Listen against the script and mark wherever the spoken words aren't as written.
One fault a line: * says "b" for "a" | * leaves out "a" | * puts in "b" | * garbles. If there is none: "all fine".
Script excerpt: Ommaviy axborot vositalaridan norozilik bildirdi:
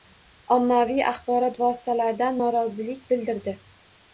all fine